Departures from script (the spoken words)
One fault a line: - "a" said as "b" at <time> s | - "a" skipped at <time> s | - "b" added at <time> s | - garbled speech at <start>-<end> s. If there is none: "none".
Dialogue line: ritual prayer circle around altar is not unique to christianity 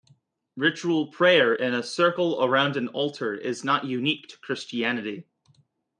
- "in a" added at 1.5 s
- "an" added at 2.8 s